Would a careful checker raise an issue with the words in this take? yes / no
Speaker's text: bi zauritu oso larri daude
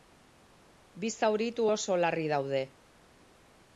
no